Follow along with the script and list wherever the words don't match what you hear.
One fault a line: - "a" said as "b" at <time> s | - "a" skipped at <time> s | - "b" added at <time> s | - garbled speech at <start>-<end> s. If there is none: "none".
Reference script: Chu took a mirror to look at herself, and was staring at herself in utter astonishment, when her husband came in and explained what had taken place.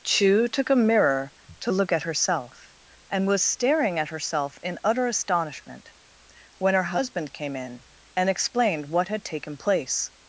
none